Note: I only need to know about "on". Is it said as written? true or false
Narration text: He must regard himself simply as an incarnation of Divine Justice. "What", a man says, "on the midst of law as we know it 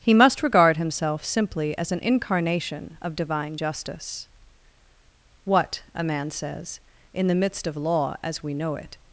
false